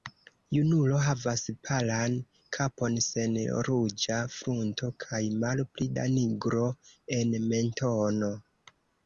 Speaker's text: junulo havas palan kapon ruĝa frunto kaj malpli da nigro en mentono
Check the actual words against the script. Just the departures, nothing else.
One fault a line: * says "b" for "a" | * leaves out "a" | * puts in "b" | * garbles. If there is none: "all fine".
* puts in "sen"